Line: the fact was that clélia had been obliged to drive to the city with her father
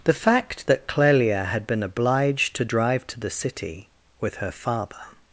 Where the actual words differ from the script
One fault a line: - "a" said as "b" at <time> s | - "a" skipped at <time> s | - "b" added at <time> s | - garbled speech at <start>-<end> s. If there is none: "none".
- "was" skipped at 0.7 s